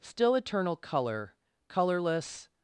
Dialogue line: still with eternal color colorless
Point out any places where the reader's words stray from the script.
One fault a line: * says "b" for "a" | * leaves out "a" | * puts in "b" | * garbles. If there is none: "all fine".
* leaves out "with"